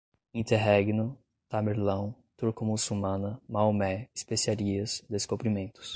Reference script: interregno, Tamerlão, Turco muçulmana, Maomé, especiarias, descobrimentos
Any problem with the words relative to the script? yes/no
no